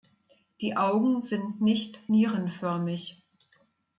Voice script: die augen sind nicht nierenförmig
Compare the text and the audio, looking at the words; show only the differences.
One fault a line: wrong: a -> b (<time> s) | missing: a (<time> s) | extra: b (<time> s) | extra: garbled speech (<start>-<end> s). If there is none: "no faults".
no faults